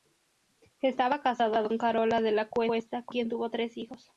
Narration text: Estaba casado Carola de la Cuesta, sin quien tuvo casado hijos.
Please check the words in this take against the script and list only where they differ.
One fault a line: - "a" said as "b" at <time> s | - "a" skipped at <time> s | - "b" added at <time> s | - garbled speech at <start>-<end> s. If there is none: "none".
- "con" added at 1.7 s
- "sin" said as "con" at 3.0 s
- "casado" said as "tres" at 3.5 s